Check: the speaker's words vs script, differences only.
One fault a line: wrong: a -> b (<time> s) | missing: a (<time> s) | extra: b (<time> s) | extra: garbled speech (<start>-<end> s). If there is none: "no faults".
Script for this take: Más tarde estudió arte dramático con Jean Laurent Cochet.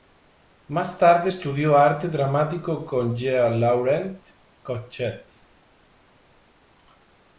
no faults